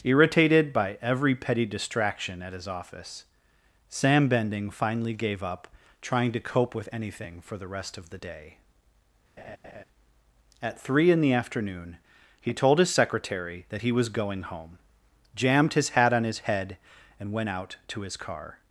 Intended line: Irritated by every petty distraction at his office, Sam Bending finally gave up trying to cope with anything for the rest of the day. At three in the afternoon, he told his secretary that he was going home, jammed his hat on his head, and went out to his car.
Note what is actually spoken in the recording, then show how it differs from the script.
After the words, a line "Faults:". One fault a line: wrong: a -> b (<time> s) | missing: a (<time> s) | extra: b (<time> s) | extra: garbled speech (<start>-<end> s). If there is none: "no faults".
Irritated by every petty distraction at his office, Sam Bending finally gave up trying to cope with anything for the rest of the day. At three in the afternoon, he told his secretary that he was going home, jammed his hat on his head, and went out to his car.
Faults:
no faults